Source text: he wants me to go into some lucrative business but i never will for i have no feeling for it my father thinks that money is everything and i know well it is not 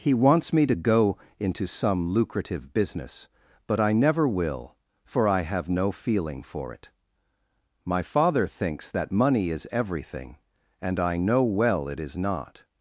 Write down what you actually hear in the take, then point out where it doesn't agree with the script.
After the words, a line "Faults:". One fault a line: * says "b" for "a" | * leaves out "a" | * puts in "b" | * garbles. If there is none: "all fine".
he wants me to go into some lucrative business but i never will for i have no feeling for it my father thinks that money is everything and i know well it is not
Faults:
all fine